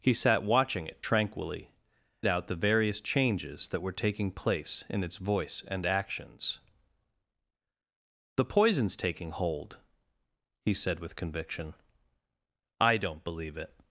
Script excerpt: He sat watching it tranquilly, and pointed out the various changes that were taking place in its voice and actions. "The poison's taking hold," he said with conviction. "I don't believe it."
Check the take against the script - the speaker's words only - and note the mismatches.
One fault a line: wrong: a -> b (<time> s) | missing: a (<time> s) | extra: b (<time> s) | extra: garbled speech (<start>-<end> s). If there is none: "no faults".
missing: and pointed (1.7 s)